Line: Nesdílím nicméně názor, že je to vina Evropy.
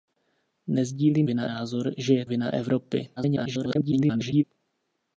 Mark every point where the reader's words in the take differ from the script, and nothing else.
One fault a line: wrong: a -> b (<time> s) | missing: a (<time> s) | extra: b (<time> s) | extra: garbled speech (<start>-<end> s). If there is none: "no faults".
wrong: nicméně -> vina (1.2 s)
missing: to (2.2 s)
extra: garbled speech (3.2-4.4 s)